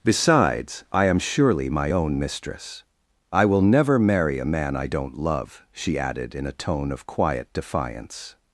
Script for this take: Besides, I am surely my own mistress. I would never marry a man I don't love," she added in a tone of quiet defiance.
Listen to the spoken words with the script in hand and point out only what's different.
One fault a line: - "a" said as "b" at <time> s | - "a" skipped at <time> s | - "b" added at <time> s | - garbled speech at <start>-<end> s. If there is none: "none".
- "would" said as "will" at 3.5 s